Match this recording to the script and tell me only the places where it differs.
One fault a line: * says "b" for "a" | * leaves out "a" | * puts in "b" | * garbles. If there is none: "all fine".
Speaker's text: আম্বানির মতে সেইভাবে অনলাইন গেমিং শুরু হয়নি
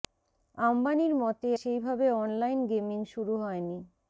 all fine